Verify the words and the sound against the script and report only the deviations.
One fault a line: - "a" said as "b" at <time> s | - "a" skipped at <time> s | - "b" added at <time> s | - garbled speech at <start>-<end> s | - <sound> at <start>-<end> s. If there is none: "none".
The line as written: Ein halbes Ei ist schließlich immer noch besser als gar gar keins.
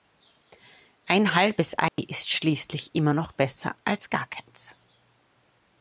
- dropout at 1.9-2.0 s
- "gar" skipped at 4.3 s